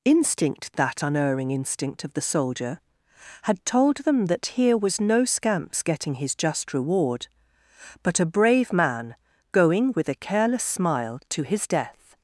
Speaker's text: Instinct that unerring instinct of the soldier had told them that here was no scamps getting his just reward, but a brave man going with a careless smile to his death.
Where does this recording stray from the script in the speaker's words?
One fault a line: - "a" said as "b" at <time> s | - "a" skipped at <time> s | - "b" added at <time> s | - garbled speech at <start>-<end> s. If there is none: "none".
none